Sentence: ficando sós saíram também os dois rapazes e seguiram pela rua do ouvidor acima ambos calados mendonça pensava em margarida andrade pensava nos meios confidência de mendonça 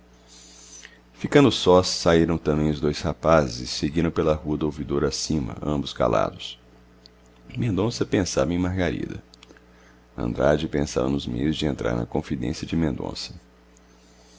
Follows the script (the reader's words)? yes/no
no